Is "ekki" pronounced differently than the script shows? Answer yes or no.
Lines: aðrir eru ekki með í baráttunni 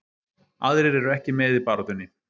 no